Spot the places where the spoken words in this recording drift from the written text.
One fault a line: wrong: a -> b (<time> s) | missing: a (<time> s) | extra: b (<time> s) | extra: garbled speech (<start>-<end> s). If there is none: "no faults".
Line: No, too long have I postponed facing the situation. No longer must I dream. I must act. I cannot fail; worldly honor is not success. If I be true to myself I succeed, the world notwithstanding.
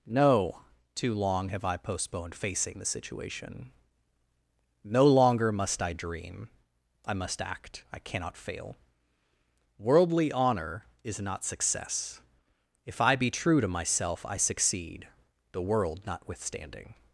no faults